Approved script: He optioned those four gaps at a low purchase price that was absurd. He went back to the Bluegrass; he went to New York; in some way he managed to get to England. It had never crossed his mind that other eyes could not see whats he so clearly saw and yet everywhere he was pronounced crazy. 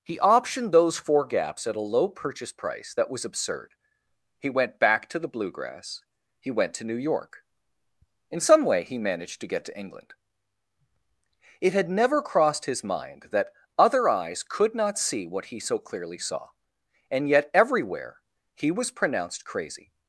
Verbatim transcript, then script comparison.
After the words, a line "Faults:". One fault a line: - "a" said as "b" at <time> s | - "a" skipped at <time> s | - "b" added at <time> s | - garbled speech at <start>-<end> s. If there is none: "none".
He optioned those four gaps at a low purchase price that was absurd. He went back to the Bluegrass; he went to New York; in some way he managed to get to England. It had never crossed his mind that other eyes could not see what he so clearly saw and yet everywhere he was pronounced crazy.
Faults:
- "whats" said as "what" at 15.2 s